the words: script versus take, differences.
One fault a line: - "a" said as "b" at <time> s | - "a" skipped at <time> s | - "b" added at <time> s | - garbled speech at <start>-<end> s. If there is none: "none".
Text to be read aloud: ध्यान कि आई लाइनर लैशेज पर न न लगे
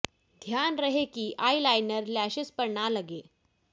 - "रहे" added at 0.8 s
- "न" skipped at 2.9 s